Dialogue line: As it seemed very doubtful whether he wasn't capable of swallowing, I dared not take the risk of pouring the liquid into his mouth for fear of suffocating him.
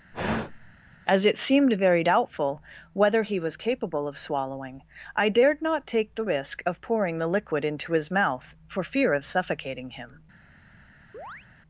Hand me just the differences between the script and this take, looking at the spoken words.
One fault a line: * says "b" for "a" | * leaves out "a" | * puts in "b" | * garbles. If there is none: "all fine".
* says "was" for "wasn't"